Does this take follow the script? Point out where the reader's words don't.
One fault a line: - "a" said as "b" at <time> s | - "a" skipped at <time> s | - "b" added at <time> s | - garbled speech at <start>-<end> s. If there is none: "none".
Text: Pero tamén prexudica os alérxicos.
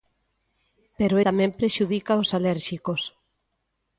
none